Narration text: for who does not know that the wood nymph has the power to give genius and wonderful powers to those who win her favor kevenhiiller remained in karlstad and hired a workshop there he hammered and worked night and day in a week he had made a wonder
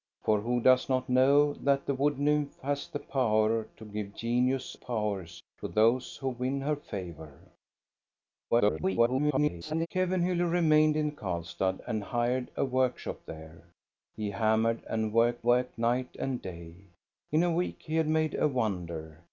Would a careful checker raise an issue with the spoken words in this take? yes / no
yes